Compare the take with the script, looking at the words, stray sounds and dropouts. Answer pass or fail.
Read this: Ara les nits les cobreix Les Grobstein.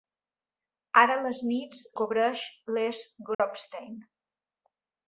fail